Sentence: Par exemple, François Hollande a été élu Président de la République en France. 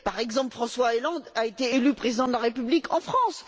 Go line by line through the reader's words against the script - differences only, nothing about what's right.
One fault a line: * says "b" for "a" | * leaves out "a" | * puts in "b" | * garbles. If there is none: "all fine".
all fine